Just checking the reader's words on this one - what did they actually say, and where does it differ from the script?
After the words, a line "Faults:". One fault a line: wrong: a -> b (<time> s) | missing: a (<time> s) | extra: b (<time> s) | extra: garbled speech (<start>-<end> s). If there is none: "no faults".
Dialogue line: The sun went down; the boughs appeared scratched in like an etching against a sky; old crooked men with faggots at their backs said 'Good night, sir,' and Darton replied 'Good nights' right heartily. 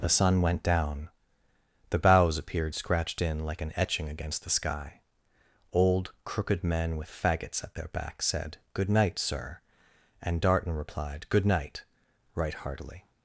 The sun went down; the boughs appeared scratched in like an etching against the sky; old crooked men with faggots at their backs said 'Good night, sir,' and Darton replied 'Good night' right heartily.
Faults:
wrong: a -> the (4.5 s)
wrong: nights -> night (11.5 s)